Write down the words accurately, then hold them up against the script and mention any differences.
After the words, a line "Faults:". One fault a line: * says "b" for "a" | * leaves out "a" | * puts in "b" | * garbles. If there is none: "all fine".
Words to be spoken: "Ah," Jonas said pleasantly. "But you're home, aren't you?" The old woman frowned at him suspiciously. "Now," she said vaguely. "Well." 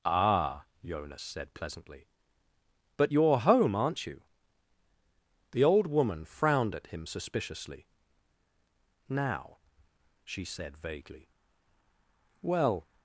"Ah," Jonas said pleasantly. "But you're home, aren't you?" The old woman frowned at him suspiciously. "Now," she said vaguely. "Well."
Faults:
all fine